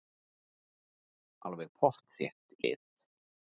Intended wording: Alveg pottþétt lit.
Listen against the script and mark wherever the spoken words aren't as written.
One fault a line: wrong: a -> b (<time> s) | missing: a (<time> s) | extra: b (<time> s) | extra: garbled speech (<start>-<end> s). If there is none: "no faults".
no faults